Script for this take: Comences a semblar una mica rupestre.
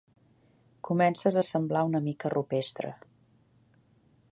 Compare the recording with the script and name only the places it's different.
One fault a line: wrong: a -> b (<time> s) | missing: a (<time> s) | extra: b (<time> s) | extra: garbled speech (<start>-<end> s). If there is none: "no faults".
no faults